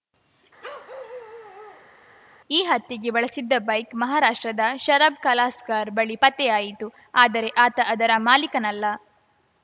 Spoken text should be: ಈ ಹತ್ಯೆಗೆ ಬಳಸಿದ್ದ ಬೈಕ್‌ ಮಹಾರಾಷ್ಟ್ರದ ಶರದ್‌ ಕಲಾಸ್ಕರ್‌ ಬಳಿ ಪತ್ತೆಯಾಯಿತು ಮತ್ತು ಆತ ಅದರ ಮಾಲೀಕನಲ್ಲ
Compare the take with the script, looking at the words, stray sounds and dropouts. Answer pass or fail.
fail